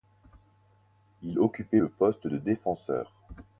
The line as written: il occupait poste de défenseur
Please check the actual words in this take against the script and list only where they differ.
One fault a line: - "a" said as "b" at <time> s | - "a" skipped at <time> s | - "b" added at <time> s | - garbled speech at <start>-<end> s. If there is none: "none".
- "le" added at 1.8 s